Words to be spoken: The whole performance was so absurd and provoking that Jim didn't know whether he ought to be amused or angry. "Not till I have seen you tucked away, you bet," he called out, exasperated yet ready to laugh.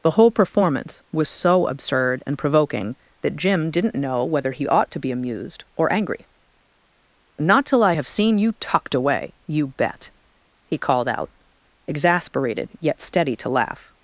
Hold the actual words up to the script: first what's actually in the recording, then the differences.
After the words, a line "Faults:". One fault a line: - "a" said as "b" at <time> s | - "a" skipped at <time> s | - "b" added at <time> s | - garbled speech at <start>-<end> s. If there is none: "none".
The whole performance was so absurd and provoking that Jim didn't know whether he ought to be amused or angry. "Not till I have seen you tucked away, you bet," he called out, exasperated yet steady to laugh.
Faults:
- "ready" said as "steady" at 13.0 s